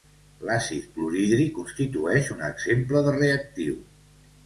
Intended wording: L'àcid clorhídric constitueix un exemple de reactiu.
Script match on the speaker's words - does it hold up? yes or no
yes